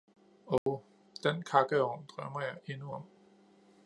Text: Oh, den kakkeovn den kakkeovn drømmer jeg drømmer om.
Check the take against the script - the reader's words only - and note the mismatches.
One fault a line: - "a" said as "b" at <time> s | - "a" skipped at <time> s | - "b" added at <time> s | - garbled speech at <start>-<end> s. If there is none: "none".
- "den kakkeovn" skipped at 2.1 s
- "drømmer" said as "endnu" at 2.6 s